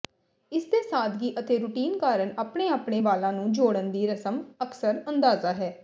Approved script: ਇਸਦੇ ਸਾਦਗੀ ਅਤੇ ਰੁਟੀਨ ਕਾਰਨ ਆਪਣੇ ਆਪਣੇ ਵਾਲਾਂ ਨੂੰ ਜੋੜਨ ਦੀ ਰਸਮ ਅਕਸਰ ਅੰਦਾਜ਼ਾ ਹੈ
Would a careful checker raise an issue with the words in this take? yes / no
no